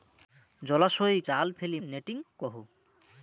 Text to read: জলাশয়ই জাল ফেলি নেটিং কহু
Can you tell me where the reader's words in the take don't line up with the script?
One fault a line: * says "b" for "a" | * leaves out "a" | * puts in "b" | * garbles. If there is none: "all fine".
all fine